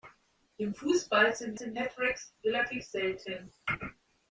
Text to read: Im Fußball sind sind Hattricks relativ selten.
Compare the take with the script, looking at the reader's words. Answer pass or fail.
pass